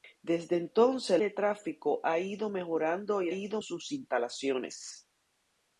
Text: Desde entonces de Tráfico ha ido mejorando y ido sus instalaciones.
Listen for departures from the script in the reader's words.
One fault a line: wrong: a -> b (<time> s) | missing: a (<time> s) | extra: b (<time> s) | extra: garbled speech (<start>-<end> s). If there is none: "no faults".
no faults